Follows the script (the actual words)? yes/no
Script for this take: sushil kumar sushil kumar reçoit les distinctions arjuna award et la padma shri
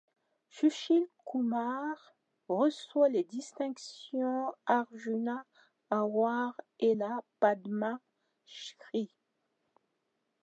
no